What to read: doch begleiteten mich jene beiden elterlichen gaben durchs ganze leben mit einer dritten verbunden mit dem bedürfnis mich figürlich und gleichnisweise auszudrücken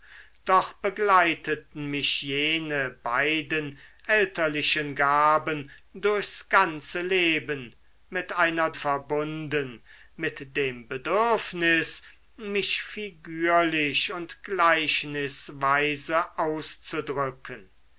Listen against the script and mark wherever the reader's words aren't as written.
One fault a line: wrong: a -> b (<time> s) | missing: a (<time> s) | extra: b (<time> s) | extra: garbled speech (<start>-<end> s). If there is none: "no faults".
missing: dritten (8.7 s)